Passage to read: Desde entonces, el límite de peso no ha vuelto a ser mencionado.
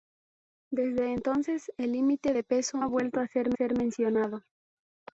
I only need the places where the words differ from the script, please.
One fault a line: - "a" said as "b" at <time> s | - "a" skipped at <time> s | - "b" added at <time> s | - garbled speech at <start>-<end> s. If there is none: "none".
- "no" skipped at 2.8 s
- "ser" added at 3.5 s